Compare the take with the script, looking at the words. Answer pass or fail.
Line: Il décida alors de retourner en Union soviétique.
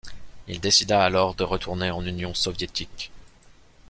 pass